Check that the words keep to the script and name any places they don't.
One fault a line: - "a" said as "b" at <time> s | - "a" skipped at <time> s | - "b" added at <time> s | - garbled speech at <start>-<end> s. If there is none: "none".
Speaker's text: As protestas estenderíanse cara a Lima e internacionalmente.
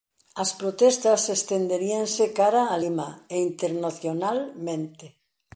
none